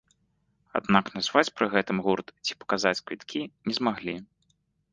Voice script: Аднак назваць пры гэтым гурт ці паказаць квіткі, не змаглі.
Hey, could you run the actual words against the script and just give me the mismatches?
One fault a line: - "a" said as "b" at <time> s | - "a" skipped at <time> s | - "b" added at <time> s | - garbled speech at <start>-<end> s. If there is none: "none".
none